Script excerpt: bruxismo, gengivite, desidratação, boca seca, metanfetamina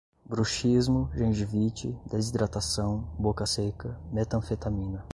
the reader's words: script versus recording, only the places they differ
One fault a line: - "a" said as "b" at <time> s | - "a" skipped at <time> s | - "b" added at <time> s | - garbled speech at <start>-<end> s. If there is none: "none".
none